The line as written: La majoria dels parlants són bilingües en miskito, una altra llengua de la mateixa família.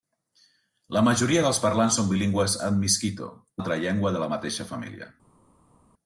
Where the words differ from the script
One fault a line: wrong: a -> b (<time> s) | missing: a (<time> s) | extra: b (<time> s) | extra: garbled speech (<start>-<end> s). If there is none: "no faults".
missing: una (3.3 s)